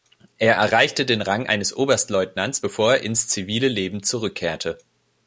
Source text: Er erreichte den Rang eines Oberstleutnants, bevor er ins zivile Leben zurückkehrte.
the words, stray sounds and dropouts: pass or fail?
pass